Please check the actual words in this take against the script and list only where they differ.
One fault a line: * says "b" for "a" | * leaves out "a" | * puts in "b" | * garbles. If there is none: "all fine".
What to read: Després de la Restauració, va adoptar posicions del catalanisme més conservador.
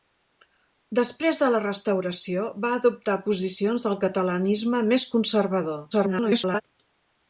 * garbles